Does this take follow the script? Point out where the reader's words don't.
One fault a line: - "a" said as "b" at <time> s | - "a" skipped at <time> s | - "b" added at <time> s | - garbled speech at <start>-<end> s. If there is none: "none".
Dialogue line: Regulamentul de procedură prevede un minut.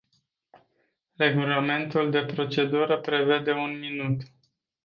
none